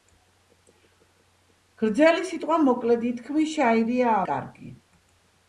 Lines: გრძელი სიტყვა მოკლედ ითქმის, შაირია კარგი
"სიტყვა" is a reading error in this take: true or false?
false